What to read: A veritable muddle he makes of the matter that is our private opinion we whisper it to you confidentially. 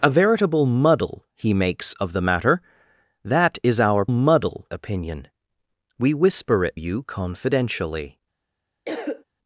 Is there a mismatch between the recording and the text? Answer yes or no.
yes